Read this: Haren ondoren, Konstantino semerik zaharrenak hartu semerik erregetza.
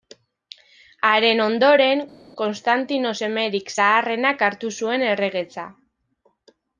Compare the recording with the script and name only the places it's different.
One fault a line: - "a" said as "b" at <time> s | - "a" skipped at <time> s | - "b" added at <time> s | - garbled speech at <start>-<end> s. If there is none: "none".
- "semerik" said as "zuen" at 4.8 s